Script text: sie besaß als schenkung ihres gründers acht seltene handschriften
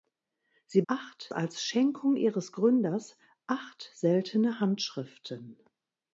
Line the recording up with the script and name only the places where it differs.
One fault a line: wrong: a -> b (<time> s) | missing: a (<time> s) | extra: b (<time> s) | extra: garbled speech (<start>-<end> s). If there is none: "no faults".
wrong: besaß -> acht (0.9 s)